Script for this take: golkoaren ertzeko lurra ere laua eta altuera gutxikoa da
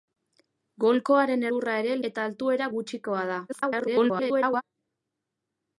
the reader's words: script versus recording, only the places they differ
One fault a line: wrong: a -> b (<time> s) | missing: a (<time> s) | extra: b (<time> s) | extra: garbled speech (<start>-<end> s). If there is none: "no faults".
missing: ertzeko (1.4 s)
missing: laua (2.0 s)
extra: garbled speech (3.5-4.6 s)